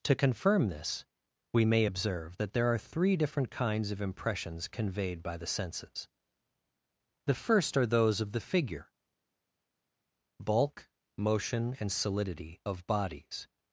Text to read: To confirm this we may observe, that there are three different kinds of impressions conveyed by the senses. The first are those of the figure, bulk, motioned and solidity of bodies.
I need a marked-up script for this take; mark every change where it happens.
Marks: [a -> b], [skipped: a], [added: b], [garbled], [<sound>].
To confirm this we may observe, that there are three different kinds of impressions conveyed by the senses. The first are those of the figure, bulk, [motioned -> motion] and solidity of bodies.